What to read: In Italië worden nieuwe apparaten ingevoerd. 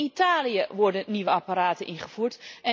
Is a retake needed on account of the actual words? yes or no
no